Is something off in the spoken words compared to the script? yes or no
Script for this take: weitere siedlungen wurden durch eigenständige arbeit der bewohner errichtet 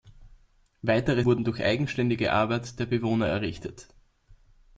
yes